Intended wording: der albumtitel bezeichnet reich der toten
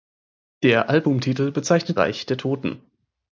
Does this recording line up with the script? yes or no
yes